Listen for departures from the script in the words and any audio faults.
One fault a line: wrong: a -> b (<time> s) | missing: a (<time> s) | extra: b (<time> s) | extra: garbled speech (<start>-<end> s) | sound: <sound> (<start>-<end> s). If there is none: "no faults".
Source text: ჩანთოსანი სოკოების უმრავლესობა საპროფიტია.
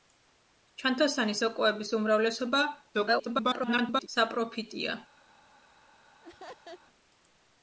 extra: garbled speech (2.9-4.1 s)
sound: laugh (6.2-6.8 s)